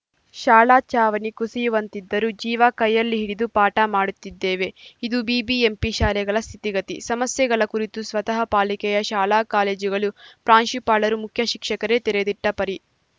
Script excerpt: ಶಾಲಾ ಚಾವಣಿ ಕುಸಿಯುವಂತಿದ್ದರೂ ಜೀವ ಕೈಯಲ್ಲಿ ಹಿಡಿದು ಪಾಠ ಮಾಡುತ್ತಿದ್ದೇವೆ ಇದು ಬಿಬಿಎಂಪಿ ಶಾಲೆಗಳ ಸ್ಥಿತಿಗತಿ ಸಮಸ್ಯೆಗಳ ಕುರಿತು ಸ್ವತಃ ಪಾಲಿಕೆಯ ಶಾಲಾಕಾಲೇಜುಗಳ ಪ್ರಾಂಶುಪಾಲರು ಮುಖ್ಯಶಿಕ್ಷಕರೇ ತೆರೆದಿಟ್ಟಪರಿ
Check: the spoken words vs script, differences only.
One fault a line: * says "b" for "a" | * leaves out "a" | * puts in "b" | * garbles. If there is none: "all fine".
all fine